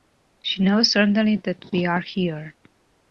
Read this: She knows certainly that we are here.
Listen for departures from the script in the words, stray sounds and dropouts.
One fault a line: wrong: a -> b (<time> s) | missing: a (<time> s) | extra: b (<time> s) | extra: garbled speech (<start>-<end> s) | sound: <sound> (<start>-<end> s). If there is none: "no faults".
no faults